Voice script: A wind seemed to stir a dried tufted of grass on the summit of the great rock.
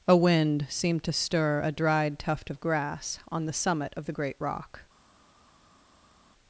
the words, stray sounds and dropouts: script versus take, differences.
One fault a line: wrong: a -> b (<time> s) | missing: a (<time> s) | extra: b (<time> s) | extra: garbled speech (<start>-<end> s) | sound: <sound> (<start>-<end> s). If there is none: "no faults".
wrong: tufted -> tuft (2.2 s)